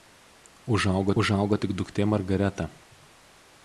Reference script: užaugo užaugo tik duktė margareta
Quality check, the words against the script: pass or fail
pass